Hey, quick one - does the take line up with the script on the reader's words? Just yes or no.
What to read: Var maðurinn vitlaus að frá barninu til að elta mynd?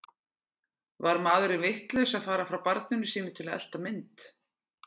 no